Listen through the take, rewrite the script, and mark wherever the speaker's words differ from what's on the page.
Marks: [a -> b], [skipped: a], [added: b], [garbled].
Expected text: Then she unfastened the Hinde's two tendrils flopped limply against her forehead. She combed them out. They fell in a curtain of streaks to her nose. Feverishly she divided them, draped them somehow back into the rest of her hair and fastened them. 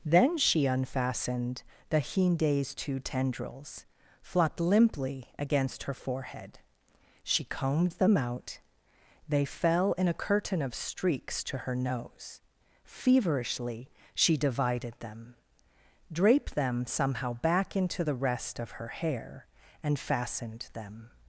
Then she unfastened the Hinde's two tendrils flopped limply against her forehead. She combed them out. They fell in a curtain of streaks to her nose. Feverishly she divided them, draped them somehow back into the rest of her hair and fastened them.